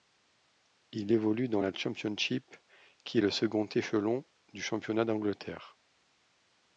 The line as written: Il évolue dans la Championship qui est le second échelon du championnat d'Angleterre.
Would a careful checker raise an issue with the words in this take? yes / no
no